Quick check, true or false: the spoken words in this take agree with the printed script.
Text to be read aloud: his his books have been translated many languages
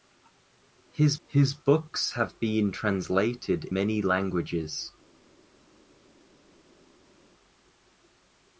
true